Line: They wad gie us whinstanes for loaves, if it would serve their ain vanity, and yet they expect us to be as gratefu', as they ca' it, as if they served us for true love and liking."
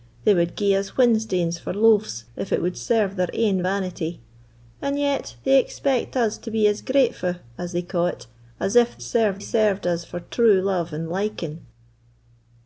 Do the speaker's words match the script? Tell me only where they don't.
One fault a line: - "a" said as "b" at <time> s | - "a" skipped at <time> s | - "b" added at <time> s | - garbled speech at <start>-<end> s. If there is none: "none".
- "they" said as "serve" at 9.0 s